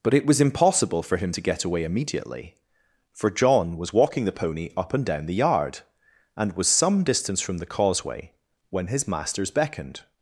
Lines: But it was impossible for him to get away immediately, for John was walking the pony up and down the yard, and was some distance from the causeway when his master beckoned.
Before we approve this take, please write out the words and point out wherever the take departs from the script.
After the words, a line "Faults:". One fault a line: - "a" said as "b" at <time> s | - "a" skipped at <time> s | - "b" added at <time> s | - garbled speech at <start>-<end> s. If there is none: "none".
But it was impossible for him to get away immediately, for John was walking the pony up and down the yard, and was some distance from the causeway when his masters beckoned.
Faults:
- "master" said as "masters" at 9.1 s